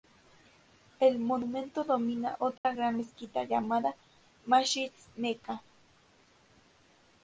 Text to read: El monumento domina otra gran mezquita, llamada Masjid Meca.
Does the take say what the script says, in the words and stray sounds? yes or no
no